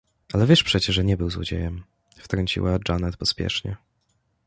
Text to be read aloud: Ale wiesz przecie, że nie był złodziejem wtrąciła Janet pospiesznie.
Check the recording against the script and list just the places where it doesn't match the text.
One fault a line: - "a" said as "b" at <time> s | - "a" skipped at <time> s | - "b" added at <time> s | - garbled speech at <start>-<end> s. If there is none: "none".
none